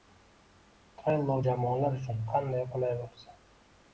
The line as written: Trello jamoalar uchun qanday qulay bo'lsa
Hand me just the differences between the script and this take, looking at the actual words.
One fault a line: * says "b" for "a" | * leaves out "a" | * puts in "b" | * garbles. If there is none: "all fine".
all fine